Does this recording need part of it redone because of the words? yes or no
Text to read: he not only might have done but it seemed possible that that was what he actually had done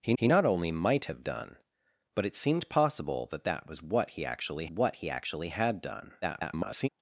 yes